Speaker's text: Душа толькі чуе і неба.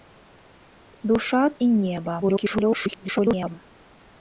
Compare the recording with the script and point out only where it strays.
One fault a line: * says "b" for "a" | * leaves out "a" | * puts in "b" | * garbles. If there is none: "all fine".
* leaves out "толькі чуе"
* garbles